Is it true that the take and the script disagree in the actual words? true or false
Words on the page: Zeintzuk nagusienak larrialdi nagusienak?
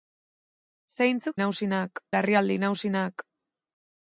false